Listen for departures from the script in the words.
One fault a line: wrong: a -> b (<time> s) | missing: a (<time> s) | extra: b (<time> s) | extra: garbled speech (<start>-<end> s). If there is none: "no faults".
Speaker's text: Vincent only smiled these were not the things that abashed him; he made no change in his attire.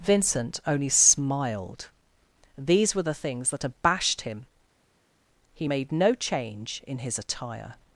missing: not (3.0 s)